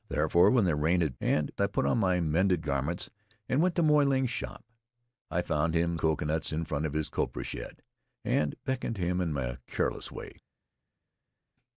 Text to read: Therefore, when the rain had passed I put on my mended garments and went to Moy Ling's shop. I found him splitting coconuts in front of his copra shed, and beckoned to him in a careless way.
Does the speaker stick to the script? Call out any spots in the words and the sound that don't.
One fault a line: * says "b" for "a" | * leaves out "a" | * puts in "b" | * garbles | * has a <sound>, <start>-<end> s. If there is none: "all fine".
* says "and" for "passed"
* leaves out "splitting"